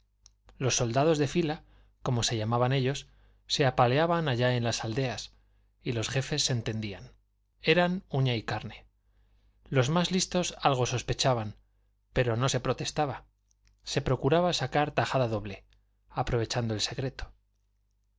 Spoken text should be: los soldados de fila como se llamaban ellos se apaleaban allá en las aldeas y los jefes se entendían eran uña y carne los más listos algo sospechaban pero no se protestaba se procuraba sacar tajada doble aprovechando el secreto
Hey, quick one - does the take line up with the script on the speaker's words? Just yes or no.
yes